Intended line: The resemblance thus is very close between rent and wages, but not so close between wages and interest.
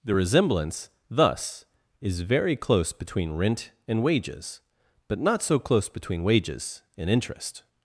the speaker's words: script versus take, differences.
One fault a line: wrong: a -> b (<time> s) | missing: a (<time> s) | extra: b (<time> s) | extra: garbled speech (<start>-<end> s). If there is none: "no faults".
no faults